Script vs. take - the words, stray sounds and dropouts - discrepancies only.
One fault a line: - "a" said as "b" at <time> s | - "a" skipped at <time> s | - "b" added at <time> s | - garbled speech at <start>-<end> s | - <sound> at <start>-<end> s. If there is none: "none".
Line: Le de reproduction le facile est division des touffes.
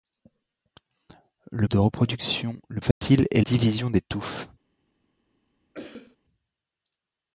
- dropout at 2.9-3.0 s
- cough at 5.7-6.2 s